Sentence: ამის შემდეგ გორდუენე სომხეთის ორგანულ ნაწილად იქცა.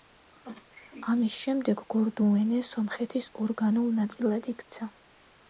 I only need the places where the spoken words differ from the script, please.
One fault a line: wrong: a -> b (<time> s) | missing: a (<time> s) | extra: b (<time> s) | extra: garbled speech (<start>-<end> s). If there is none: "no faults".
no faults